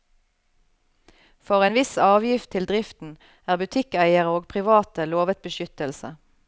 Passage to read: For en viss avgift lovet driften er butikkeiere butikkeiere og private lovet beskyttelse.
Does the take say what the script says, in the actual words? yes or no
no